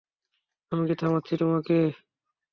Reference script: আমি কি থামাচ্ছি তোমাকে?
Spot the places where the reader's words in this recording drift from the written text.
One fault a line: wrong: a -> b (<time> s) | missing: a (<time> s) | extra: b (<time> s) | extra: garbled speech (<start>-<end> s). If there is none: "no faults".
no faults